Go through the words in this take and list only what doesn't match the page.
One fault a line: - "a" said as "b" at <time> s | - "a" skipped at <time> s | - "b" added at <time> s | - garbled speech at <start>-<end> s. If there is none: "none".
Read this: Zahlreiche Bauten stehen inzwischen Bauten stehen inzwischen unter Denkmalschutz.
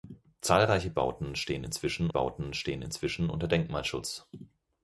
none